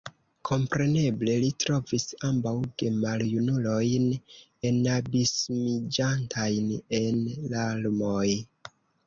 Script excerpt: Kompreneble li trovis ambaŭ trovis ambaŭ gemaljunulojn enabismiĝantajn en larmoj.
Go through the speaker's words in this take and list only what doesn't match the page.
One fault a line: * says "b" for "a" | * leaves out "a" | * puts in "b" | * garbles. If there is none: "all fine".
* leaves out "trovis ambaŭ"